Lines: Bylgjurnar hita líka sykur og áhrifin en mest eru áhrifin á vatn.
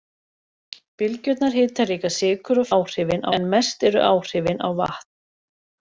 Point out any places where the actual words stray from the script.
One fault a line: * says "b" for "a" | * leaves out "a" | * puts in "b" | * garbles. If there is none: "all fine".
all fine